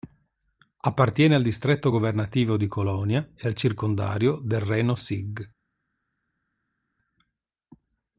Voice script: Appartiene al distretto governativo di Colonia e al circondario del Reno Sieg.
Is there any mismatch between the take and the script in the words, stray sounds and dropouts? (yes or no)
no